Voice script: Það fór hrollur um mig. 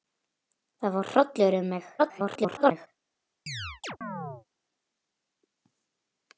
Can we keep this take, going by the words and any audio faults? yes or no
no